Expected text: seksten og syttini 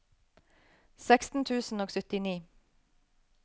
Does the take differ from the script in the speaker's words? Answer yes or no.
yes